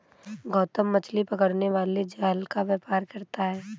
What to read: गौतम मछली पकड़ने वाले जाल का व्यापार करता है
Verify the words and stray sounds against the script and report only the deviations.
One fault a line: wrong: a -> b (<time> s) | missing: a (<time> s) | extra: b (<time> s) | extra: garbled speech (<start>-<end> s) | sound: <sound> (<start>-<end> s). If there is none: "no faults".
no faults